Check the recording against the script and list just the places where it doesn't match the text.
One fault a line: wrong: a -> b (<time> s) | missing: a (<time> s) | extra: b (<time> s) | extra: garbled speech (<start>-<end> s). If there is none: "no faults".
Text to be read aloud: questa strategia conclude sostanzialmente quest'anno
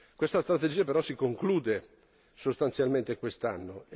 extra: però si (0.8 s)